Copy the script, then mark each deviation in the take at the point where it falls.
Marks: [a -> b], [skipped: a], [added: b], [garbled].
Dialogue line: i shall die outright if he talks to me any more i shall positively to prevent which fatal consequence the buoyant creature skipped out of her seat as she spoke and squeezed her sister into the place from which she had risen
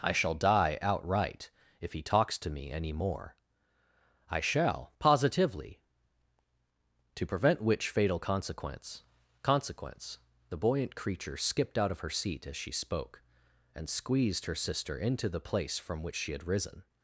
i shall die outright if he talks to me any more i shall positively to prevent which fatal consequence [added: consequence] the buoyant creature skipped out of her seat as she spoke and squeezed her sister into the place from which she had risen